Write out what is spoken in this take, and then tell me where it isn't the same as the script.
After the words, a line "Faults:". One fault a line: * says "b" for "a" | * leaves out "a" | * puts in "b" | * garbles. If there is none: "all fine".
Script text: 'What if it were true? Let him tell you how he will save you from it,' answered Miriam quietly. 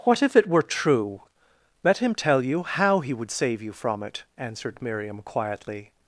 'What if it were true? Let him tell you how he would save you from it,' answered Miriam quietly.
Faults:
* says "would" for "will"